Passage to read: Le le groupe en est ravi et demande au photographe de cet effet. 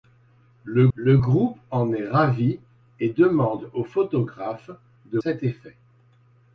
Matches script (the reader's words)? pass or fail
pass